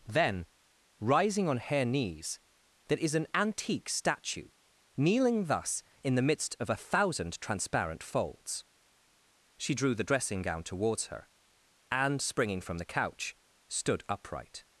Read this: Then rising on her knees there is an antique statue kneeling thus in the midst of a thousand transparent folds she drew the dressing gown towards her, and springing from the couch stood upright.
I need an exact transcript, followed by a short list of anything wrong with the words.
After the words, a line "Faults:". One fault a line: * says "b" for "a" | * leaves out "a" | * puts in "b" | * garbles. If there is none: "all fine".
Then rising on her knees there is an antique statue kneeling thus in the midst of a thousand transparent folds she drew the dressing gown towards her, and springing from the couch stood upright.
Faults:
all fine